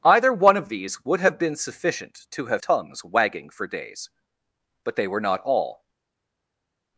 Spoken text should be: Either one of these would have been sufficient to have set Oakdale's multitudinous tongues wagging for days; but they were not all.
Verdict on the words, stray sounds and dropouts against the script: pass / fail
fail